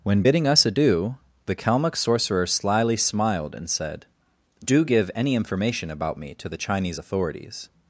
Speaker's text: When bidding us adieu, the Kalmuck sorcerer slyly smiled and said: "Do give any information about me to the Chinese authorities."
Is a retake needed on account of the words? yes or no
no